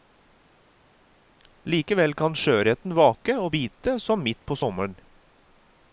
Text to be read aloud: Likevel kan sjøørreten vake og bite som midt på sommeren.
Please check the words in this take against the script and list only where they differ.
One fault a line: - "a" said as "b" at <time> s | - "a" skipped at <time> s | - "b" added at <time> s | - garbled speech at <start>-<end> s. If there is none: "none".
none